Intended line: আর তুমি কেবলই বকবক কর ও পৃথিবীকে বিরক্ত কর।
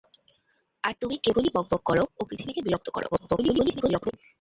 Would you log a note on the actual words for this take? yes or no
yes